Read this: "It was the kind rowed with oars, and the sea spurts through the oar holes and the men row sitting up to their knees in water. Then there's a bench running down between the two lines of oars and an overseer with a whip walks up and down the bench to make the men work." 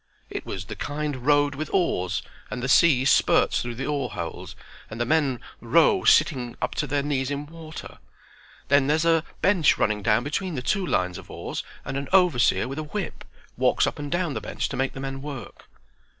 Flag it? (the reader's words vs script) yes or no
no